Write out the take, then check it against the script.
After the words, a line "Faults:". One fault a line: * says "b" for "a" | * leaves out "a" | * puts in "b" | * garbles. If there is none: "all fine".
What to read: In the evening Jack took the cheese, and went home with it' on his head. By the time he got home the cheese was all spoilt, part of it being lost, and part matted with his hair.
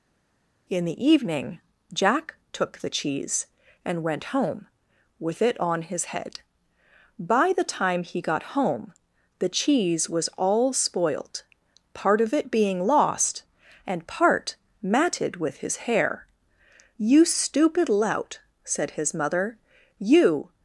In the evening Jack took the cheese, and went home with it' on his head. By the time he got home the cheese was all spoilt, part of it being lost, and part matted with his hair. "You stupid lout," said his mother, "you
Faults:
* puts in "You stupid lout said his mother you"